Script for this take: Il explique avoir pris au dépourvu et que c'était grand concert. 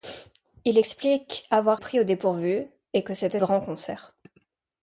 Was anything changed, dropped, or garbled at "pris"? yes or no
no